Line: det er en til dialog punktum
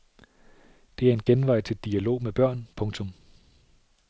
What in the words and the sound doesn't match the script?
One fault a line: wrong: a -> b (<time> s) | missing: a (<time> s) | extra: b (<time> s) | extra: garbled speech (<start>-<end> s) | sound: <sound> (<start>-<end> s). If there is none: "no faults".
extra: genvej (1.2 s)
extra: med børn (2.2 s)